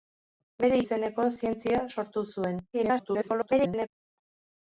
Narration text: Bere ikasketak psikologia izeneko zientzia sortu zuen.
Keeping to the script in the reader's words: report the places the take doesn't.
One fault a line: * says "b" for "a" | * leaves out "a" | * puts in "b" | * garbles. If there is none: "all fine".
* leaves out "ikasketak psikologia"
* garbles